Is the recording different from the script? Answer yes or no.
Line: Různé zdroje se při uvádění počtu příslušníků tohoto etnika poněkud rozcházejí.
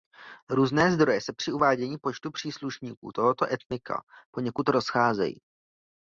no